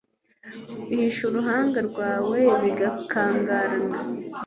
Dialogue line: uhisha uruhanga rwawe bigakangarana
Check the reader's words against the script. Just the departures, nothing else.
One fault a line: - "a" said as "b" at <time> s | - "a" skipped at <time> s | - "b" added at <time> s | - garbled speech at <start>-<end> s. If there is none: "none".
none